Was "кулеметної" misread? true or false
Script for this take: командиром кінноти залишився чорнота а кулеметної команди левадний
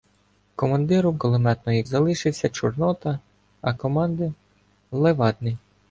true